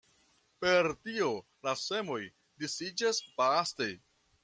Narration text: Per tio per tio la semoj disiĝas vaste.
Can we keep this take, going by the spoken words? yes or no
no